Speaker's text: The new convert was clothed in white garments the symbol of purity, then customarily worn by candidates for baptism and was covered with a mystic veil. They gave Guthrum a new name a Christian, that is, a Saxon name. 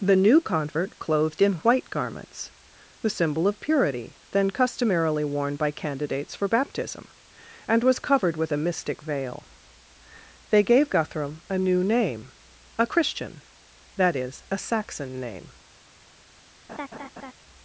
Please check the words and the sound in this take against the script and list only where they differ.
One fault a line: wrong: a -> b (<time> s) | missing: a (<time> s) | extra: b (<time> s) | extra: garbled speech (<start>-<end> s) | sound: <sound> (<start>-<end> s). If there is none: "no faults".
missing: was (1.0 s)
sound: laugh (16.7-17.3 s)